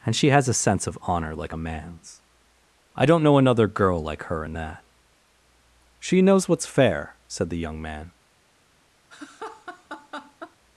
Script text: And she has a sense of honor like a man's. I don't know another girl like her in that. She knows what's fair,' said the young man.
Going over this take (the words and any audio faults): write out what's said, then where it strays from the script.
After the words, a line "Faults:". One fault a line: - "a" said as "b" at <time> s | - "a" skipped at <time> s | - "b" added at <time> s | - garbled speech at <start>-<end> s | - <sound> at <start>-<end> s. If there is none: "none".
And she has a sense of honor like a man's. I don't know another girl like her in that. She knows what's fair,' said the young man.
Faults:
- laugh at 9.1-10.6 s